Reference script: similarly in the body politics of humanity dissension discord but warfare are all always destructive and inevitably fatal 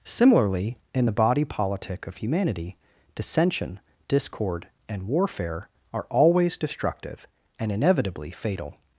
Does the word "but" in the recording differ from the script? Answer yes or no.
yes